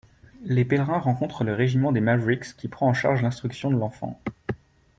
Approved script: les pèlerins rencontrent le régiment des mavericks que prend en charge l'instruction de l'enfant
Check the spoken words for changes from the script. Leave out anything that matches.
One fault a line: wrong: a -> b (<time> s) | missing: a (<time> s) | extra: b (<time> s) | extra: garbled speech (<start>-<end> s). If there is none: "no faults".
wrong: que -> qui (2.6 s)